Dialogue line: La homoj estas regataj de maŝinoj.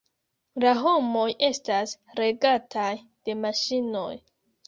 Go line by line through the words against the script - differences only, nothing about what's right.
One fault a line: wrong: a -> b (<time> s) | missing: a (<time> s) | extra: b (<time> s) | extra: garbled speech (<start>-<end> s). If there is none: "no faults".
no faults